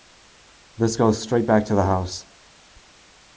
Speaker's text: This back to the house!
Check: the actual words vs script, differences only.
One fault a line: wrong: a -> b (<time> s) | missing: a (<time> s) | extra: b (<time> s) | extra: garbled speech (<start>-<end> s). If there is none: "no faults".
extra: goes straight (0.9 s)